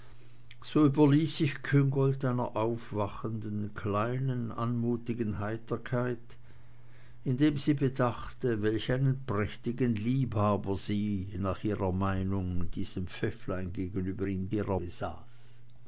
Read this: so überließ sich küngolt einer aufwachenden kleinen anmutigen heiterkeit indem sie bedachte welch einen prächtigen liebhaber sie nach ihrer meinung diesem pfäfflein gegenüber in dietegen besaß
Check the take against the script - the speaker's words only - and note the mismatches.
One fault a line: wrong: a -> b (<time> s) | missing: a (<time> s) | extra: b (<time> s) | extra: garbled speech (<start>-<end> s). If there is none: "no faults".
wrong: dietegen -> ihrer (14.5 s)